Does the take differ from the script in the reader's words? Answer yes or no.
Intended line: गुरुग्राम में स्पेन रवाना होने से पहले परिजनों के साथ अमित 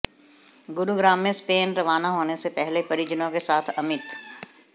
no